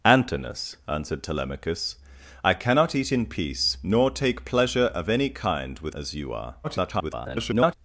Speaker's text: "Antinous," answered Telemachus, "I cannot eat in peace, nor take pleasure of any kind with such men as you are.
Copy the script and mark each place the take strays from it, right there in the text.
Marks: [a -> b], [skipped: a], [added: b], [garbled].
"Antinous," answered Telemachus, "I cannot eat in peace, nor take pleasure of any kind with [skipped: such men] as you are. [garbled]